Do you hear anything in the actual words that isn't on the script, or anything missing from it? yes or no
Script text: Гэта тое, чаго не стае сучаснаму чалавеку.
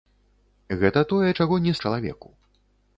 yes